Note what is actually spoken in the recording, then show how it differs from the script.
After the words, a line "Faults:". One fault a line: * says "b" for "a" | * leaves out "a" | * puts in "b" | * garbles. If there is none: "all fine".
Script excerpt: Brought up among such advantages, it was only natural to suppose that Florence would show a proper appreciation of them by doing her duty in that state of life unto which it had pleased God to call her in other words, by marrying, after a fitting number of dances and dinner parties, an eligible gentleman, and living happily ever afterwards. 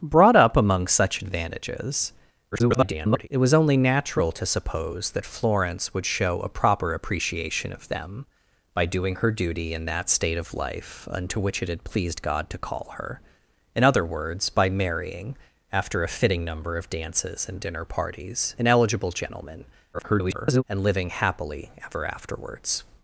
Brought up among such advantages, [garbled] it was only natural to suppose that Florence would show a proper appreciation of them by doing her duty in that state of life unto which it had pleased God to call her in other words, by marrying, after a fitting number of dances and dinner parties, an eligible gentleman, [garbled] and living happily ever afterwards.
Faults:
* garbles
* garbles